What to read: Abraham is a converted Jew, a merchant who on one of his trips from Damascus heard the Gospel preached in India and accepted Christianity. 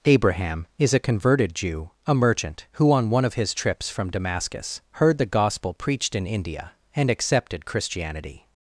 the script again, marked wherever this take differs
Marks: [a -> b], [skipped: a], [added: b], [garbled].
Abraham is a converted Jew, a merchant who on one of his trips from Damascus heard the Gospel preached in India and accepted Christianity.